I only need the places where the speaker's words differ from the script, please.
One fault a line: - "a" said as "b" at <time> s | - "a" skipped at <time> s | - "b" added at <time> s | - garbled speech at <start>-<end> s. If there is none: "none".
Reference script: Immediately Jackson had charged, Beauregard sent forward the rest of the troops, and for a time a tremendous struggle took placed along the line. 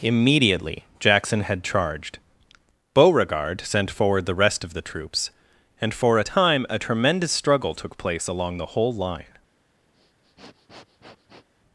- "placed" said as "place" at 8.0 s
- "whole" added at 8.7 s